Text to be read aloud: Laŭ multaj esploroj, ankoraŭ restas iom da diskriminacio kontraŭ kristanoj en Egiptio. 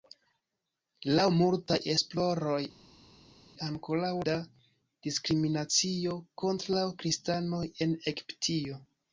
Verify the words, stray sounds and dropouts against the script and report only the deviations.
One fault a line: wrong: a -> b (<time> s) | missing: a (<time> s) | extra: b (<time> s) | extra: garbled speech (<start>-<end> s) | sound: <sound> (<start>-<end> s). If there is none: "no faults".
missing: restas iom (4.1 s)